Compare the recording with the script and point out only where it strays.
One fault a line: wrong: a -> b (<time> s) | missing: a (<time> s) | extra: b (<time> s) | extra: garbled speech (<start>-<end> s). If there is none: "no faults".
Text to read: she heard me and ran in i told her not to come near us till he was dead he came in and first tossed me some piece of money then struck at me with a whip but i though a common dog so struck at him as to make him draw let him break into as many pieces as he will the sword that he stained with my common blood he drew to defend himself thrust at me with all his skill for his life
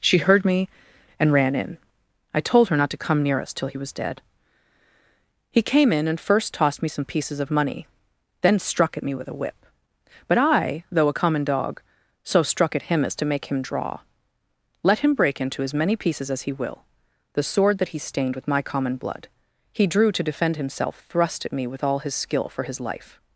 wrong: piece -> pieces (7.0 s)